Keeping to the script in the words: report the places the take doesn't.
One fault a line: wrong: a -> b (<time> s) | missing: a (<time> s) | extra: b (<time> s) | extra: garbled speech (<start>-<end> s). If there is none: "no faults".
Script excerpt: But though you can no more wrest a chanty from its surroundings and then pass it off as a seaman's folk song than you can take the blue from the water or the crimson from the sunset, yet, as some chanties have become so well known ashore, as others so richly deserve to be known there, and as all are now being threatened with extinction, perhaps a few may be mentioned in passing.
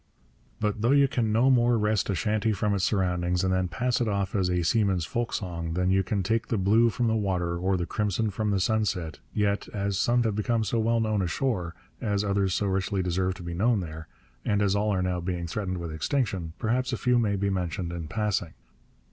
missing: chanties (10.2 s)